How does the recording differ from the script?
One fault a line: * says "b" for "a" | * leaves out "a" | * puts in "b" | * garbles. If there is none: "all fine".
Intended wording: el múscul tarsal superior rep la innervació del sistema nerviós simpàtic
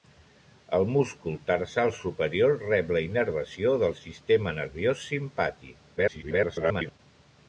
* garbles